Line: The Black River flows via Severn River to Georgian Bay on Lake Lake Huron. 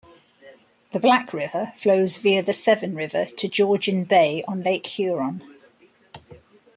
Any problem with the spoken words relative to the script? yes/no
yes